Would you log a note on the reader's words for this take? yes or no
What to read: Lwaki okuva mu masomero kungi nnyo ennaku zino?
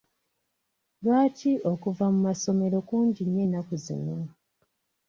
no